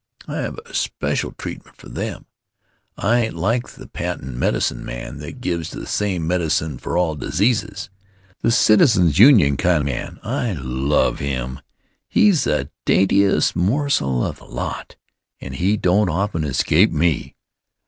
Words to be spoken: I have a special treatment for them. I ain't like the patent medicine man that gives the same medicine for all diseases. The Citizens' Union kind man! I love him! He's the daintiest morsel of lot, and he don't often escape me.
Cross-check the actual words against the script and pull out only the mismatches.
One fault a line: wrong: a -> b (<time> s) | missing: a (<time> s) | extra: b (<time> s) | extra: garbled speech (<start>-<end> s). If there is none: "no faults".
no faults